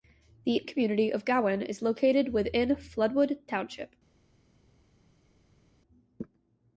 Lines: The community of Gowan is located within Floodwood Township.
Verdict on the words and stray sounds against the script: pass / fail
pass